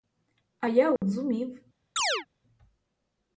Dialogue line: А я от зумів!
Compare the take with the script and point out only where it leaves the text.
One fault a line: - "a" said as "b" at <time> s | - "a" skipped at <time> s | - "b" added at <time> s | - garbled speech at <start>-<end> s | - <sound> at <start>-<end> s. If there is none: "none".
- dropout at 1.0-1.0 s
- chirp at 2.0-2.3 s